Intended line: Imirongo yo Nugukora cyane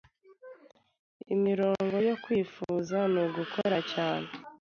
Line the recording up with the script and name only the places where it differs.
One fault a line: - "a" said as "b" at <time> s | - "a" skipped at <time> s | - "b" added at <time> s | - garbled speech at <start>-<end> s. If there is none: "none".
- "Kwifuza" added at 2.2 s